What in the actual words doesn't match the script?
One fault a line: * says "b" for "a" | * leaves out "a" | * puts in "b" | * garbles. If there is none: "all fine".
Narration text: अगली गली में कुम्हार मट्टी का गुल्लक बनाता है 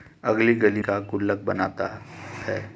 * leaves out "में कुम्हार मट्टी"